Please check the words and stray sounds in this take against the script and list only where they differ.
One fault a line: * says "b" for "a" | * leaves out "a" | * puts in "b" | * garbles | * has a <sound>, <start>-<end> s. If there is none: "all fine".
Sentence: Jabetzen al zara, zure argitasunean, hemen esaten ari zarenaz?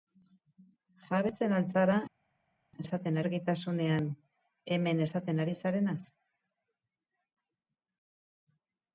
* says "esaten" for "zure"